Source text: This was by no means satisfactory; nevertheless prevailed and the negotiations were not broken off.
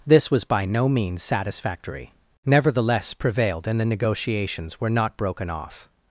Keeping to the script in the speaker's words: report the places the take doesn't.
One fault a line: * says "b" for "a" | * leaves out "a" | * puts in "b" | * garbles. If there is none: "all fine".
all fine